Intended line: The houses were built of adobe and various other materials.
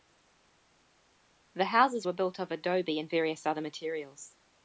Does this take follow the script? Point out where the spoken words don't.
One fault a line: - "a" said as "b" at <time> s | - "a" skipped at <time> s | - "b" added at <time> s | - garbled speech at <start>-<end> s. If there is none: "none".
none